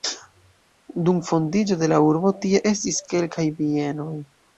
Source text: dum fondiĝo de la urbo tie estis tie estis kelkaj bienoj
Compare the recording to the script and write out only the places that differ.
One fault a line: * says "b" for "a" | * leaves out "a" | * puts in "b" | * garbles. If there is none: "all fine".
* leaves out "tie estis"